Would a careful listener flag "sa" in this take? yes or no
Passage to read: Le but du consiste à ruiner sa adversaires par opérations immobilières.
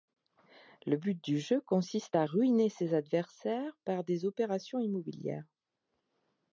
yes